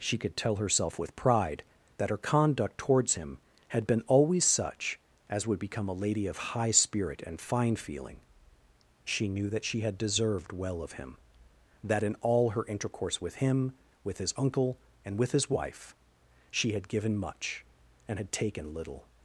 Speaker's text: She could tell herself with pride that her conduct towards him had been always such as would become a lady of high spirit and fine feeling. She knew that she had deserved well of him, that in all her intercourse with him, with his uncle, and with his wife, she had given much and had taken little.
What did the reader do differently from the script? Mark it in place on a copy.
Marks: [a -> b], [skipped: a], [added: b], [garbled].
She could tell herself with pride that her conduct towards him had been always such as would become a lady of high spirit and fine feeling. She knew that she had deserved well of him, that in all her intercourse with him, with his uncle, and with his wife, she had given much and had taken little.